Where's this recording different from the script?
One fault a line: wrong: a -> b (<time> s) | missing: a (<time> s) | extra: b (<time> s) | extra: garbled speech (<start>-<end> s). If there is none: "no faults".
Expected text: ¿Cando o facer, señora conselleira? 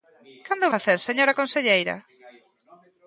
no faults